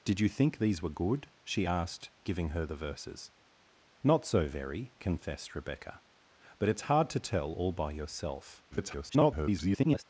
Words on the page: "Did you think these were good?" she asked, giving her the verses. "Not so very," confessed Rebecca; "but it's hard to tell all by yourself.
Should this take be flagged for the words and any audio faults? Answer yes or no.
yes